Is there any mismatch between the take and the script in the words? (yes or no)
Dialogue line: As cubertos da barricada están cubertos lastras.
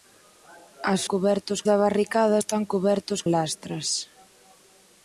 no